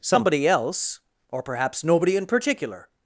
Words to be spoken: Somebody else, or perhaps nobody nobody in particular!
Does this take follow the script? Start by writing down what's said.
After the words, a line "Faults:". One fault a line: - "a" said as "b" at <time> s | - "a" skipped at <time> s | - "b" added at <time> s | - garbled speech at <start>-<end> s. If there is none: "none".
Somebody else, or perhaps nobody in particular!
Faults:
- "nobody" skipped at 2.2 s